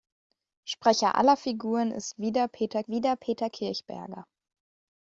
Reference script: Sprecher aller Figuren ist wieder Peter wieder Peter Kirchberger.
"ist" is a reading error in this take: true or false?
false